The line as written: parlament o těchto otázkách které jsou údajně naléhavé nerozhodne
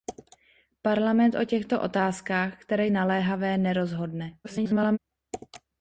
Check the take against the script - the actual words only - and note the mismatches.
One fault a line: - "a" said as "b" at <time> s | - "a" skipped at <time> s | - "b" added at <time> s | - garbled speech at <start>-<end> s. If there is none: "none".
- "jsou údajně" skipped at 2.9 s
- garbled speech at 4.4-5.0 s